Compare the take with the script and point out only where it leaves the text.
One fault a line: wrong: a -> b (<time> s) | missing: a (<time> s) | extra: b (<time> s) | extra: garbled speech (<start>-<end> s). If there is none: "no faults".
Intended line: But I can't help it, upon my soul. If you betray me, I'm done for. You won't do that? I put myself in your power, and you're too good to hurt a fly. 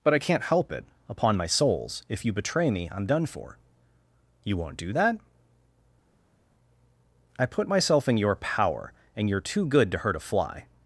wrong: soul -> souls (1.5 s)